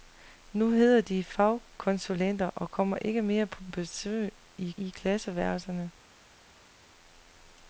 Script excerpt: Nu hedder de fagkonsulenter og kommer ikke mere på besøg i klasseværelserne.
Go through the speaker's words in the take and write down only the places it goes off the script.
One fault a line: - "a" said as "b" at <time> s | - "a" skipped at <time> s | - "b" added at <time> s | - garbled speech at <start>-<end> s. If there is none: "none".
- "i" added at 4.8 s